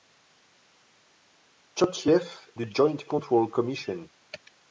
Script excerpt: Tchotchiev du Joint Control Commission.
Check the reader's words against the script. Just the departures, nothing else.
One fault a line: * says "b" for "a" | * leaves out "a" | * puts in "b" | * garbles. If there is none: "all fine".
all fine